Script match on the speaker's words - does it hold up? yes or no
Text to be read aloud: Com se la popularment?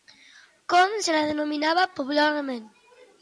no